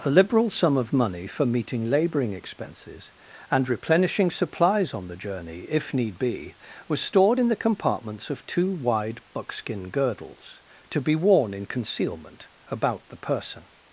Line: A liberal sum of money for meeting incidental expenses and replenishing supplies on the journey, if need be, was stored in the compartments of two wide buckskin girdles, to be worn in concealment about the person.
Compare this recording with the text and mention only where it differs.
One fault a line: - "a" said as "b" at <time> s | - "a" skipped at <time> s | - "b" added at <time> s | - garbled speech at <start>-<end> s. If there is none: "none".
- "incidental" said as "labouring" at 1.9 s